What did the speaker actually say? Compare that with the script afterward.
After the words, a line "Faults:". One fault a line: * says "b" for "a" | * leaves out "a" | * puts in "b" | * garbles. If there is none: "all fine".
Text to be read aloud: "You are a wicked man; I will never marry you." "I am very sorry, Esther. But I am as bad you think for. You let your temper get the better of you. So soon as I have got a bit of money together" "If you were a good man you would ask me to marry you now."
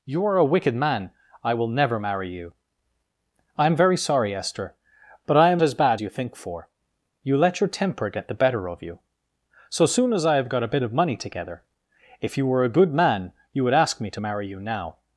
"You are a wicked man; I will never marry you." "I am very sorry, Esther. But I am as bad you think for. You let your temper get the better of you. So soon as I have got a bit of money together" "If you were a good man you would ask me to marry you now."
Faults:
all fine